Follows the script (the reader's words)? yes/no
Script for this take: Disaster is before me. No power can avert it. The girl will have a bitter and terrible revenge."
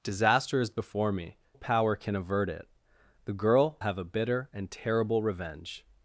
no